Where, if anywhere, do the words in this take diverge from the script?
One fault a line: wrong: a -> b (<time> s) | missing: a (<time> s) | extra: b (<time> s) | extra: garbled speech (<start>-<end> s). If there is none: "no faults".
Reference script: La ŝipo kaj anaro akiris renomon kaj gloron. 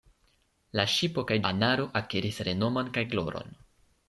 no faults